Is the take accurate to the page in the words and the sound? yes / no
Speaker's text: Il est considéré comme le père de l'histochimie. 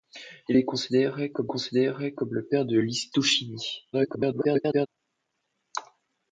no